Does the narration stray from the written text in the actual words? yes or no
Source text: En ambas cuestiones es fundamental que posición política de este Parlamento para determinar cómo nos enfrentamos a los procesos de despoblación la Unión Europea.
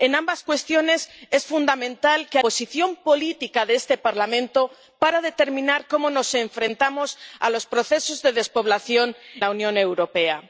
no